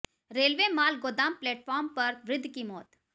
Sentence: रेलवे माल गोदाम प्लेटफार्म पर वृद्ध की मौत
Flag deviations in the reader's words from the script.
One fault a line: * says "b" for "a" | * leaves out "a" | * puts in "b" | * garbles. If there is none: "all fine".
all fine